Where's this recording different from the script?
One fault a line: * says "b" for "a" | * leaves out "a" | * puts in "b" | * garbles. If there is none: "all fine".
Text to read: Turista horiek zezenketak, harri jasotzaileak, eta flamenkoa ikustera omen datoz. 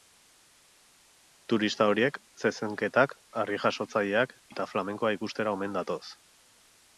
all fine